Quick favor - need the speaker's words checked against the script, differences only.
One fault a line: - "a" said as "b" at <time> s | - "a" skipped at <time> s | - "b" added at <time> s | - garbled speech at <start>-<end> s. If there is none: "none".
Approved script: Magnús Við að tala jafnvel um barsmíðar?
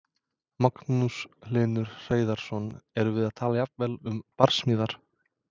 - "Hlynur Hreiðarsson Erum" added at 1.5 s